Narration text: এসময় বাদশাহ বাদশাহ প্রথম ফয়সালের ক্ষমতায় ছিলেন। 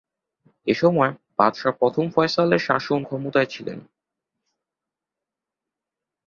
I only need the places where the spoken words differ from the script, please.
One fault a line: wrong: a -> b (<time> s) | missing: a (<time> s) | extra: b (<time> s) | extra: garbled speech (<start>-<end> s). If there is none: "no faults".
missing: বাদশাহ (1.7 s)
extra: শাসন (2.6 s)